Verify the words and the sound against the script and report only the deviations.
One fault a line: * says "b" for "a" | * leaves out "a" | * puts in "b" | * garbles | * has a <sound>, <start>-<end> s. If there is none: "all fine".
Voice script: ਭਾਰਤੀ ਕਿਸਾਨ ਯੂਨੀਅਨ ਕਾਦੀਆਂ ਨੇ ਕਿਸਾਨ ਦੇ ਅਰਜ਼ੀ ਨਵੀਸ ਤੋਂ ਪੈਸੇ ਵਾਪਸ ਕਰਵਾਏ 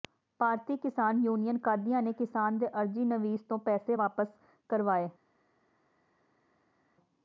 all fine